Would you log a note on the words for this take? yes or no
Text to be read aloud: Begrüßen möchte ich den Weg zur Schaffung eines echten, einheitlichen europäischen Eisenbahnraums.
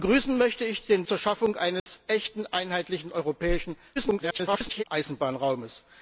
yes